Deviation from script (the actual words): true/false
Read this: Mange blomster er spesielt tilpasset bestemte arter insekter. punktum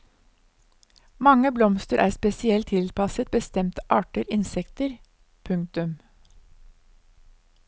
false